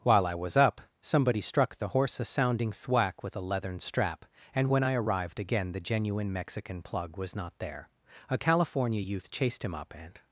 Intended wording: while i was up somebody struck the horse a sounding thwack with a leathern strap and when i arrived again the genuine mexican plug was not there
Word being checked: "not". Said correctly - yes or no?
yes